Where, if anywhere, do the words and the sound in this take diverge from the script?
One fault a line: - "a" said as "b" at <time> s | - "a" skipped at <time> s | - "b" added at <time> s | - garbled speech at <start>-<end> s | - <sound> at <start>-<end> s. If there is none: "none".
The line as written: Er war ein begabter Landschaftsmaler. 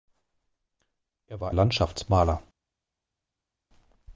- "ein begabter" skipped at 1.5 s